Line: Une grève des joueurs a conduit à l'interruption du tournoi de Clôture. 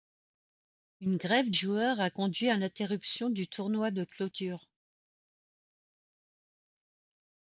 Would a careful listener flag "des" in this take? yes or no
yes